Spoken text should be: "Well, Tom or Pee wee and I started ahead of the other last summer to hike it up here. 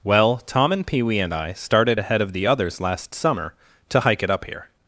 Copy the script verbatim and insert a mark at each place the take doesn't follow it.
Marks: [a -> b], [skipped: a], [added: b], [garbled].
"Well, Tom [or -> and] Pee wee and I started ahead of the [other -> others] last summer to hike it up here.